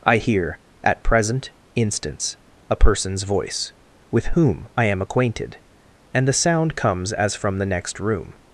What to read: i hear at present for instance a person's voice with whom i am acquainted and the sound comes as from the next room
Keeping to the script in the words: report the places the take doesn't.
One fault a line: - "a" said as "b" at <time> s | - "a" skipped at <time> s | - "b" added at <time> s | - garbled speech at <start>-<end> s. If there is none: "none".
- "for" skipped at 1.5 s